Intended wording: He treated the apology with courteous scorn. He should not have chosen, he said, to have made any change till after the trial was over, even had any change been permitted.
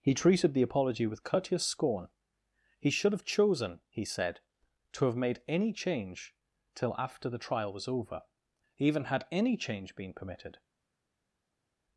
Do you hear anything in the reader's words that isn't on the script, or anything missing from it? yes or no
yes